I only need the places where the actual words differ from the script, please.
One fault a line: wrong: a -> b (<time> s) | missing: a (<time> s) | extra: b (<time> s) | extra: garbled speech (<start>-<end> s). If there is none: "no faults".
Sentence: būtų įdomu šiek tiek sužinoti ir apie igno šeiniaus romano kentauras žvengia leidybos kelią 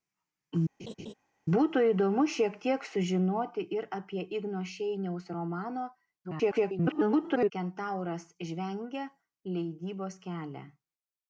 extra: garbled speech (6.2-7.5 s)